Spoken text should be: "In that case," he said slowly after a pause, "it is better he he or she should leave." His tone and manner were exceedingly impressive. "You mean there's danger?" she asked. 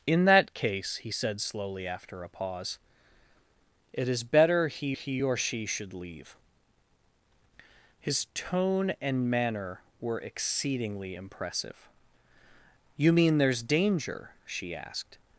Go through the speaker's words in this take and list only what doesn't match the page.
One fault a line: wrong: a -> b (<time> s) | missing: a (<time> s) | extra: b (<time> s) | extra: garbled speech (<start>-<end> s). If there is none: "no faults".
no faults